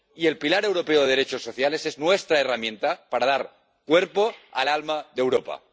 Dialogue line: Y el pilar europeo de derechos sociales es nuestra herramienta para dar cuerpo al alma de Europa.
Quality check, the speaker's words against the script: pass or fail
pass